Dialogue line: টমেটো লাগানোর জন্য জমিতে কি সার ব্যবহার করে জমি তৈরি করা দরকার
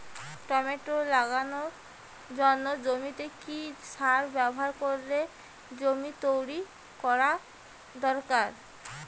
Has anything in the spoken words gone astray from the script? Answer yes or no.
no